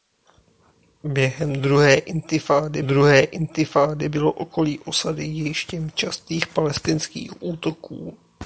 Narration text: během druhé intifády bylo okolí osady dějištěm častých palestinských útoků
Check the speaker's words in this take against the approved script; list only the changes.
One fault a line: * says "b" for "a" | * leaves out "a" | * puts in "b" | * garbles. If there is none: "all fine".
* puts in "druhé intifády"